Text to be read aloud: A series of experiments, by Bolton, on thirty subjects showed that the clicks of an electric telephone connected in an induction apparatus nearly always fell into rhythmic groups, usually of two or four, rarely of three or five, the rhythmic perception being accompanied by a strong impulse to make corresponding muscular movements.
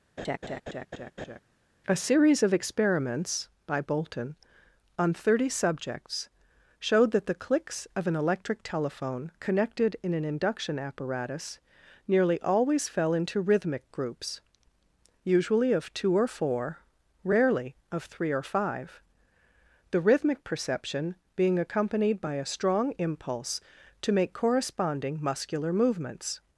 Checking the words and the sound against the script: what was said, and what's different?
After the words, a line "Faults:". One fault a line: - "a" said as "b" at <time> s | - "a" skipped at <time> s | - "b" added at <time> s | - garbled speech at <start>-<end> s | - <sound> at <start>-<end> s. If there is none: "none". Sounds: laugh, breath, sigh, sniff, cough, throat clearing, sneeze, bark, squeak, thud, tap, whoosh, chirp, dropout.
A series of experiments, by Bolton, on thirty subjects showed that the clicks of an electric telephone connected in an induction apparatus nearly always fell into rhythmic groups, usually of two or four, rarely of three or five, the rhythmic perception being accompanied by a strong impulse to make corresponding muscular movements.
Faults:
- laugh at 0.2-1.4 s